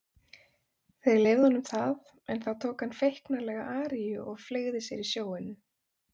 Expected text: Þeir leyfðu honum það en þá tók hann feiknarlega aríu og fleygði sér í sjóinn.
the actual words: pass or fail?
pass